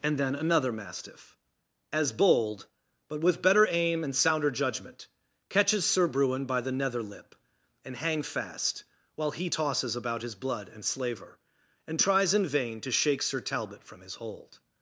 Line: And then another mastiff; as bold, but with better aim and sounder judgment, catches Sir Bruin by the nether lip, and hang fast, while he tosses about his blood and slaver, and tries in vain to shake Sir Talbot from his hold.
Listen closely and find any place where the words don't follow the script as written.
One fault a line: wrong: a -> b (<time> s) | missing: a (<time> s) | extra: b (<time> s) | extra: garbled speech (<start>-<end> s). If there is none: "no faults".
no faults